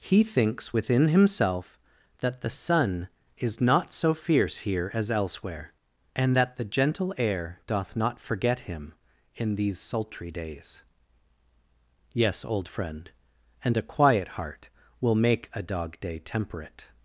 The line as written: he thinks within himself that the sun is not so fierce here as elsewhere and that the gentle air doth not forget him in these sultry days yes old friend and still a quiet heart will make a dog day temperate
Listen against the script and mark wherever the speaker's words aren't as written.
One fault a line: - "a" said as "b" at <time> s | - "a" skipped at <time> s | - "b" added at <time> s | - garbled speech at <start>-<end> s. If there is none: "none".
- "still" skipped at 13.8 s